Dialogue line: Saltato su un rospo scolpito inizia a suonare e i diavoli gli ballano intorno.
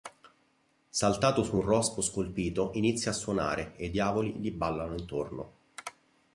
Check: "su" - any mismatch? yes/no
no